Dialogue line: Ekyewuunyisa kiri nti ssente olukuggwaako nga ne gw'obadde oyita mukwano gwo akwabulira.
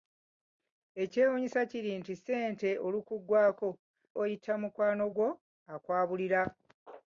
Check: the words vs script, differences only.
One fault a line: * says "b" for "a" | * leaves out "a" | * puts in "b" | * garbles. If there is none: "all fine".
* leaves out "nga ne gw'obadde"